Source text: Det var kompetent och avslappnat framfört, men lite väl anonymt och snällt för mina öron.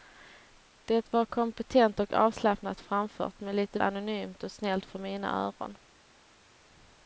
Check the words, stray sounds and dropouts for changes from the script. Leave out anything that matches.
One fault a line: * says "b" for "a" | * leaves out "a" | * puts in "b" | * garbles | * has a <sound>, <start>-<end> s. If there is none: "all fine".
* leaves out "väl"